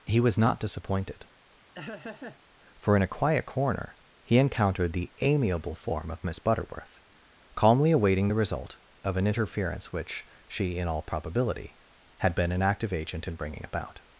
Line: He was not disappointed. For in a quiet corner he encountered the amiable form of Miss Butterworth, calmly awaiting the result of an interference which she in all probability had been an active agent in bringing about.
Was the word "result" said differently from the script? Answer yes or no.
no